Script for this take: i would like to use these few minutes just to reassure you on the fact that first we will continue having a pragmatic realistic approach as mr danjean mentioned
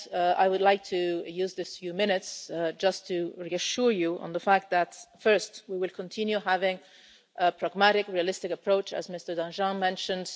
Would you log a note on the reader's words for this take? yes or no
no